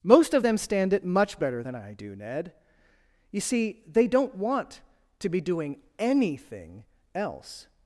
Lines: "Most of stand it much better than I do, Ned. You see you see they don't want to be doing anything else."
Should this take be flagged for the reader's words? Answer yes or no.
yes